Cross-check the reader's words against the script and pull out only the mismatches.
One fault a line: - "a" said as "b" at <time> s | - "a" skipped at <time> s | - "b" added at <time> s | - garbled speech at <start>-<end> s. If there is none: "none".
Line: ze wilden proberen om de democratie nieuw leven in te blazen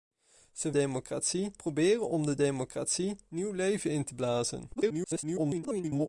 - "wilden" said as "democratie" at 0.7 s
- garbled speech at 4.7-6.1 s